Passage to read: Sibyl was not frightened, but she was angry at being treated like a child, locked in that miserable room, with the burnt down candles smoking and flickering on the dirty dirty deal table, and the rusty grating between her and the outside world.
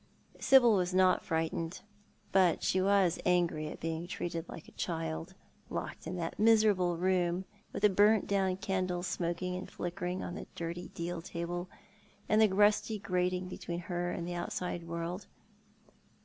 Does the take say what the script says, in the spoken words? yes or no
no